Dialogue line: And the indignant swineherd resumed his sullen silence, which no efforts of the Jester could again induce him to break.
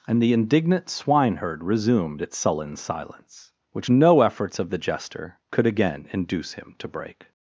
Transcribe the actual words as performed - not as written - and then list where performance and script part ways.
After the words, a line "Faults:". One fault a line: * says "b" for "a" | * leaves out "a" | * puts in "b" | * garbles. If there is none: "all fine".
And the indignant swineherd resumed its sullen silence, which no efforts of the Jester could again induce him to break.
Faults:
* says "its" for "his"